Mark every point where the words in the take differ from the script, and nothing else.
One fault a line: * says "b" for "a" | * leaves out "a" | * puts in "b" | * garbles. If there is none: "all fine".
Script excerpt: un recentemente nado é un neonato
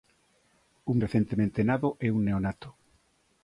all fine